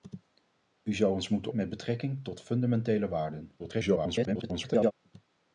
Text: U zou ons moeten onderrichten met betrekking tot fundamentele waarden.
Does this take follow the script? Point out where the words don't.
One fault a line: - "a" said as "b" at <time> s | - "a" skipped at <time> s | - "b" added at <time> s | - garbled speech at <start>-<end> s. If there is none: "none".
- "onderrichten" skipped at 1.5 s
- garbled speech at 3.6-4.9 s